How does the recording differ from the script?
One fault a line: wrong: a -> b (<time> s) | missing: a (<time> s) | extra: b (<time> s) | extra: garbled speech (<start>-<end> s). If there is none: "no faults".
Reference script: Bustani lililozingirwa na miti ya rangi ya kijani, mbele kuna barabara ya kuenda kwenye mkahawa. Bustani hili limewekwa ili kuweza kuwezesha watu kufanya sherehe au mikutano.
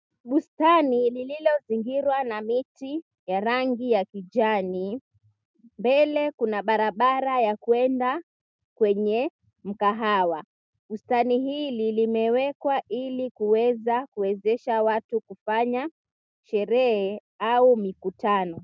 no faults